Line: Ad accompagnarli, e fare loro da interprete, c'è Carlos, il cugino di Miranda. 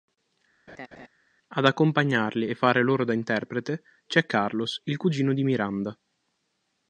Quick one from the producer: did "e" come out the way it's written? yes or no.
yes